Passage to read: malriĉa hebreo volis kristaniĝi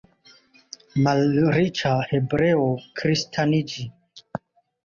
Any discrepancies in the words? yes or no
yes